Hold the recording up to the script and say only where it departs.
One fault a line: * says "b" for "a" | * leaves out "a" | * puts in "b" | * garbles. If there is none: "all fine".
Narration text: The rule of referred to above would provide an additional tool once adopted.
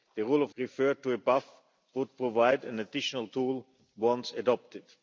all fine